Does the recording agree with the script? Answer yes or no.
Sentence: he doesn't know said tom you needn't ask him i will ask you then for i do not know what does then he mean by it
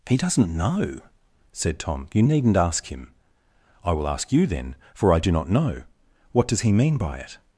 no